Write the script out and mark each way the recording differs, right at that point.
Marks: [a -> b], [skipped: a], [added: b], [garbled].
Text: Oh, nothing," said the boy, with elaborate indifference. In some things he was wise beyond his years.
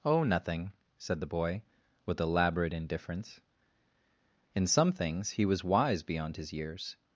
Oh, nothing," said the boy, with elaborate indifference. In some things he was wise beyond his years.